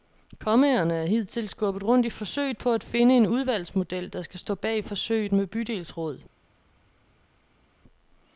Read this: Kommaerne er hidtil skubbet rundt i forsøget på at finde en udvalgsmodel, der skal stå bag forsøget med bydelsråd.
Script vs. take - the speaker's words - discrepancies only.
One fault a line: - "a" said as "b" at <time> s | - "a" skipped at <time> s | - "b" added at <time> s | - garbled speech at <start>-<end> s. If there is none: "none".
none